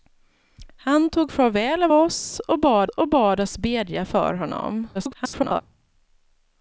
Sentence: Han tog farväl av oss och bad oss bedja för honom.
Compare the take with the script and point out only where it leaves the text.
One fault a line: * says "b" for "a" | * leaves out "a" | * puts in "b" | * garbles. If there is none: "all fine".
* puts in "och bad"
* garbles